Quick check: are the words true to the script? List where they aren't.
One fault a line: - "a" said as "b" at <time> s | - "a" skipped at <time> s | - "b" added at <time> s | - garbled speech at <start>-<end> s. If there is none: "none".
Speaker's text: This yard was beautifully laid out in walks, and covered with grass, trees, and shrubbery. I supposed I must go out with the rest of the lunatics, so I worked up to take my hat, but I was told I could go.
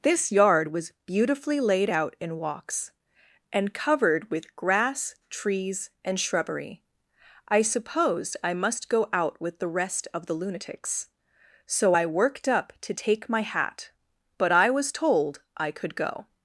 none